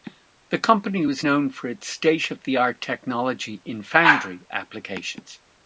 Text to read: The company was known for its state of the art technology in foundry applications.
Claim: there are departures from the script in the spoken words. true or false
false